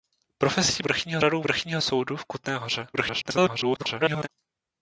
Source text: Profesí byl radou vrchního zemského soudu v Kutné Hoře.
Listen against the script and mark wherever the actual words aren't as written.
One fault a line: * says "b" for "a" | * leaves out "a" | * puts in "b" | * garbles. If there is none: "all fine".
* says "vrchního" for "byl"
* leaves out "zemského"
* garbles